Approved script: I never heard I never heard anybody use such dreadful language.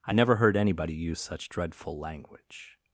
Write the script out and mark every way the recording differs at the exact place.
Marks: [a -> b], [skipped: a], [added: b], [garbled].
I never heard [skipped: I never heard] anybody use such dreadful language.